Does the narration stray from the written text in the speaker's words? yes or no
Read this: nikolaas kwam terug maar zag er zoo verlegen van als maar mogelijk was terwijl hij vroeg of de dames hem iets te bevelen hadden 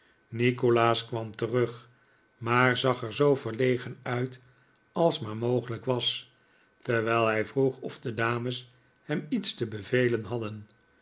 yes